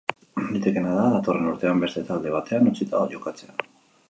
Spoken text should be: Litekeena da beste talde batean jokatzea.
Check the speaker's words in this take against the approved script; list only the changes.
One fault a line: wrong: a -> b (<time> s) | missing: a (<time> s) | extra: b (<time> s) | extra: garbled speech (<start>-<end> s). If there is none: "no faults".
extra: datorren urtean (1.1 s)
extra: utzita (2.7 s)